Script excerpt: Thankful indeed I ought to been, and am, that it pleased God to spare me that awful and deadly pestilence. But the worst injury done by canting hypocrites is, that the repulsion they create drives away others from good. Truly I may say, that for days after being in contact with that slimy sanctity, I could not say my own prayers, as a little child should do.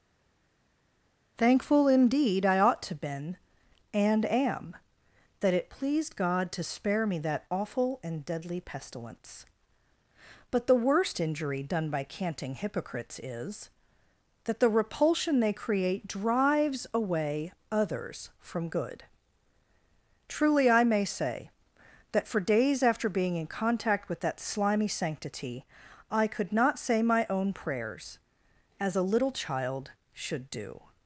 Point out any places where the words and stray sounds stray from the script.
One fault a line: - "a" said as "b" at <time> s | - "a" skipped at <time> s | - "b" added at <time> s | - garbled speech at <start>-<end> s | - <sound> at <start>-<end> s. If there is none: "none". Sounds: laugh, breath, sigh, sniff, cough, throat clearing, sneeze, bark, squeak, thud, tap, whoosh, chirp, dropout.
none